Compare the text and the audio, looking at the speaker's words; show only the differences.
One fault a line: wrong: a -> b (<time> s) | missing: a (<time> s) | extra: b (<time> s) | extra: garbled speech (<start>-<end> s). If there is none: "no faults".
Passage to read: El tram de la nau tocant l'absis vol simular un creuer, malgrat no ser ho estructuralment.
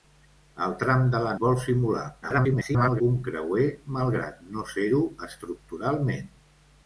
missing: nau tocant l'absis (1.3 s)
extra: garbled speech (2.2-3.0 s)